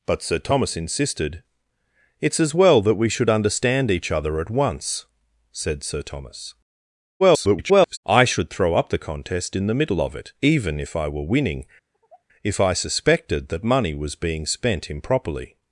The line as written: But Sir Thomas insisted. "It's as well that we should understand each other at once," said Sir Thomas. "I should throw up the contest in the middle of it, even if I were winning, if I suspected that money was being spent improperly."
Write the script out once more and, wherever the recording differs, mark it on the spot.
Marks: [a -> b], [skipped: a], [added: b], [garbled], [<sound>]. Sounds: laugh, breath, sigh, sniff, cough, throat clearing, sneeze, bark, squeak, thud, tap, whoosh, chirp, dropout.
But Sir Thomas insisted. "It's as well that we should understand each other at once," said Sir Thomas. [garbled] "I should throw up the contest in the middle of it, even if I were winning, [sigh] if I suspected that money was being spent improperly."